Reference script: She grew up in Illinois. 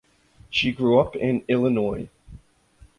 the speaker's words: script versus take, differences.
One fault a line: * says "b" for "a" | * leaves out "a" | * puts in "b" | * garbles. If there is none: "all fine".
all fine